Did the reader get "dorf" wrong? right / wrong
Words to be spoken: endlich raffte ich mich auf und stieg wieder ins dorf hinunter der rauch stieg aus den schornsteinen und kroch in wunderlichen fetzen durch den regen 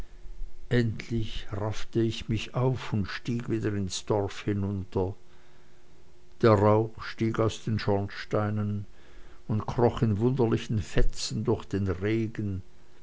right